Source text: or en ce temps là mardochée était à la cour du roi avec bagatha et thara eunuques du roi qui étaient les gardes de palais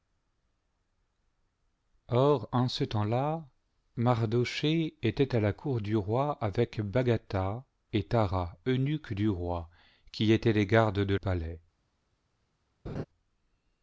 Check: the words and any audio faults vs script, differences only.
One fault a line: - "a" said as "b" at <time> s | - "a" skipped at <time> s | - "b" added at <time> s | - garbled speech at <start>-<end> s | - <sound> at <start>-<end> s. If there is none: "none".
- laugh at 12.9-13.0 s